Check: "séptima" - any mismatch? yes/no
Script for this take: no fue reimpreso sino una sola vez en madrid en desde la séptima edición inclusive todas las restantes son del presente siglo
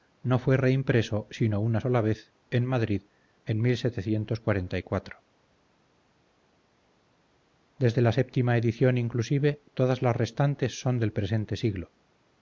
no